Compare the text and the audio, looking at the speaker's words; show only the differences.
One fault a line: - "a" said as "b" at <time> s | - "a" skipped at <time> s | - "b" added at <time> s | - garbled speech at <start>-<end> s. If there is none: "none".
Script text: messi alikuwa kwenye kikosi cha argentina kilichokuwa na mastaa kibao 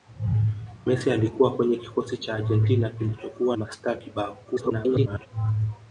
- "na" skipped at 3.6 s
- garbled speech at 4.4-5.3 s